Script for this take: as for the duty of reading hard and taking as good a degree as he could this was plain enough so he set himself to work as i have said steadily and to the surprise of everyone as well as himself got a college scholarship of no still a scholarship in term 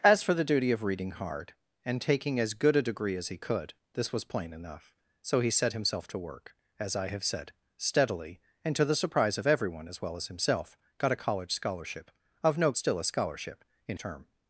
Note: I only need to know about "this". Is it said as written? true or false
true